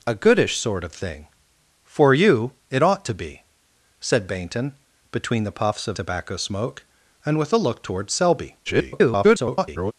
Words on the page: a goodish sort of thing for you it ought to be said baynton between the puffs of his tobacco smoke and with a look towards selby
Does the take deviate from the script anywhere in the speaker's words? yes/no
yes